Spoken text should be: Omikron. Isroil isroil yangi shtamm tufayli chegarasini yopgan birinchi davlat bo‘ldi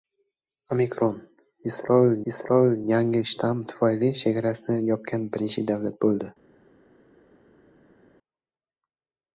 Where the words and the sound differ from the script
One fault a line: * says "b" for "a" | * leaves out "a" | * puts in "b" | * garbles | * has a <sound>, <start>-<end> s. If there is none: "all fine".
all fine